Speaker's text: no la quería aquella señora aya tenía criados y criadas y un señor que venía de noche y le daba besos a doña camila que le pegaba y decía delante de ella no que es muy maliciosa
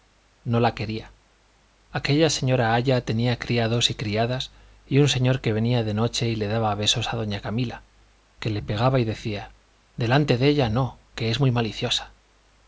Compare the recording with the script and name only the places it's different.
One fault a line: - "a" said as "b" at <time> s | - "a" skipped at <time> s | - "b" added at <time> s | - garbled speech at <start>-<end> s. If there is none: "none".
none